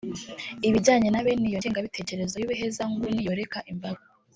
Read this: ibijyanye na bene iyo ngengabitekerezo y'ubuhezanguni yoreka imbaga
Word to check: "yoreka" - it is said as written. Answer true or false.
true